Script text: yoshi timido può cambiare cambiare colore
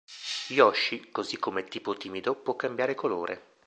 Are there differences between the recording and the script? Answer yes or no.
yes